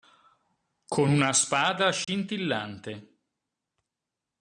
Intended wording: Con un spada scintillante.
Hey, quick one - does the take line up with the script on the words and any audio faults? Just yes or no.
no